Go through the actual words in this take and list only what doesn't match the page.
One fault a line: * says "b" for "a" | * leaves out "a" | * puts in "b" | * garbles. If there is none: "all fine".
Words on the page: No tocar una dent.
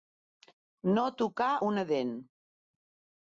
all fine